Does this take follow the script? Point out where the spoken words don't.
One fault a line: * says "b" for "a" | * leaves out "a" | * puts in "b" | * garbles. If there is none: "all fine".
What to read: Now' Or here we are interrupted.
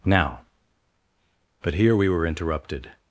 * says "But" for "Or"
* says "were" for "are"